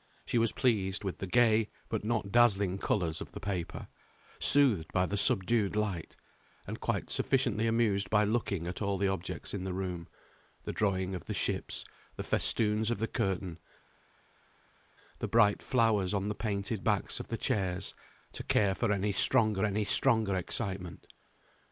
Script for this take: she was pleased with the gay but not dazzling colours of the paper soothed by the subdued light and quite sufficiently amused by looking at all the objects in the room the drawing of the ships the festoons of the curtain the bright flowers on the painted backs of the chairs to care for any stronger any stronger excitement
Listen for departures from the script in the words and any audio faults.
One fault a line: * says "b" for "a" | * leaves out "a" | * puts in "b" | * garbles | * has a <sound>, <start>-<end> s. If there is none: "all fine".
all fine